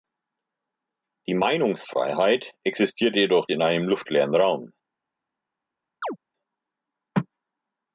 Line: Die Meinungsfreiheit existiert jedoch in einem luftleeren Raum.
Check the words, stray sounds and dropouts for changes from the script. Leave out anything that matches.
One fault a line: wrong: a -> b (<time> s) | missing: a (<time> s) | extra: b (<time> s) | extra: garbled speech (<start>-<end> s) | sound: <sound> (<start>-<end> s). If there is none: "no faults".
sound: chirp (6.0-6.2 s)